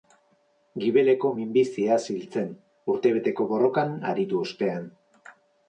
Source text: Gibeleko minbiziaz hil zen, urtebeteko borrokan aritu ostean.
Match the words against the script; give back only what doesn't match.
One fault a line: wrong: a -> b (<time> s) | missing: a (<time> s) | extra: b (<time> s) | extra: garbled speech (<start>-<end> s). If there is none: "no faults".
no faults